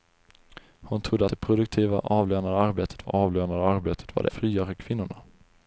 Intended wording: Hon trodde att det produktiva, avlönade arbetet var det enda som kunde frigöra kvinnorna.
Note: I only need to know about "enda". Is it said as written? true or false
false